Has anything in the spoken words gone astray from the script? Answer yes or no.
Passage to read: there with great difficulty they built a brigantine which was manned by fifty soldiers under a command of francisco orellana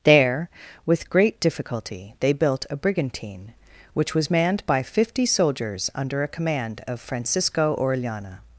no